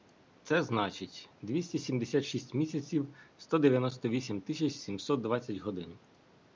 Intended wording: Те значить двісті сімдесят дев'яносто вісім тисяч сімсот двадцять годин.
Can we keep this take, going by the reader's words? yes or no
no